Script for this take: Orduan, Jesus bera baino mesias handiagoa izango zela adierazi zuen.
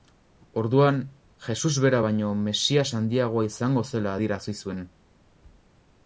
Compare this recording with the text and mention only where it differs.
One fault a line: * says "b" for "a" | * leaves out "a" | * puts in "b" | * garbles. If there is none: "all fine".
all fine